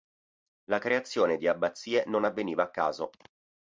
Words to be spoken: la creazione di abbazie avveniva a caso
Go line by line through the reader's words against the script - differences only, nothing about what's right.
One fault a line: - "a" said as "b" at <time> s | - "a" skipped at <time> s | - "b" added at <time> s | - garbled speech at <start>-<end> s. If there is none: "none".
- "non" added at 2.1 s